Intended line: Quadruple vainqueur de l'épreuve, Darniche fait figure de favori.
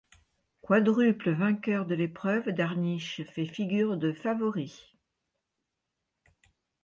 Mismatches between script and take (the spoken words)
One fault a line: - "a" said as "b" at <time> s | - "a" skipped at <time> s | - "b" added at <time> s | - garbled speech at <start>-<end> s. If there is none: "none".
none